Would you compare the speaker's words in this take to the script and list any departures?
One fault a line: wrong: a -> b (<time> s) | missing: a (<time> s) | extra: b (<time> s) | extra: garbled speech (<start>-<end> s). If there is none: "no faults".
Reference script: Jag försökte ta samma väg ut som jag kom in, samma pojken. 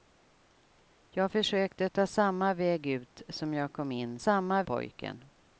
no faults